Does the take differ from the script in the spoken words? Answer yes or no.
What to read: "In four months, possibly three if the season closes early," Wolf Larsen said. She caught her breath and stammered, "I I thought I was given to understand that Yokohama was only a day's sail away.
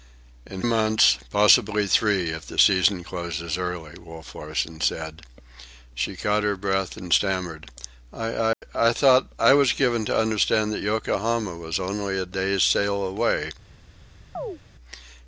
yes